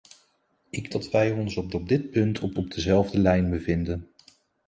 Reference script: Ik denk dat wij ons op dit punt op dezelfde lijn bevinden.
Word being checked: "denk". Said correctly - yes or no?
no